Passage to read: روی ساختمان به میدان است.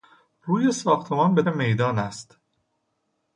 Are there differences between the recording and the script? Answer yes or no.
no